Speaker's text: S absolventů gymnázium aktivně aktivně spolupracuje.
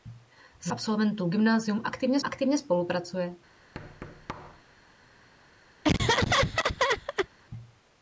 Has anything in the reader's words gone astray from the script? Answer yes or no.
no